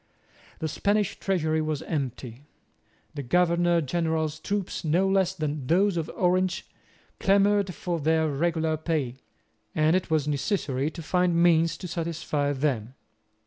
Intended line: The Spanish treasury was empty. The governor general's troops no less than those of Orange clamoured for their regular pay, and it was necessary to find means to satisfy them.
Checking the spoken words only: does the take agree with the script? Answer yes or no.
yes